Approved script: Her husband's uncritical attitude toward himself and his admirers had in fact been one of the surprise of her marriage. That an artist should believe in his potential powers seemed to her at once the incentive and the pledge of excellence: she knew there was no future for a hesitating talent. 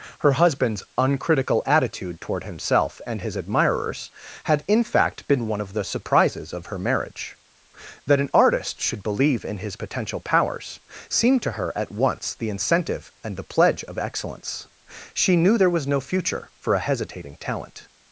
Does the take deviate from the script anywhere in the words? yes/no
yes